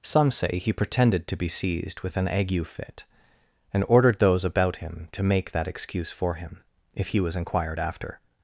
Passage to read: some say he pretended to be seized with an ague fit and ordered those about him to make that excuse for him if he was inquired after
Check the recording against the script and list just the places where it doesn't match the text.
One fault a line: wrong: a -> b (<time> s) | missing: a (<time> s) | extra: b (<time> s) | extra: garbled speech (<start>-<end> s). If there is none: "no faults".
no faults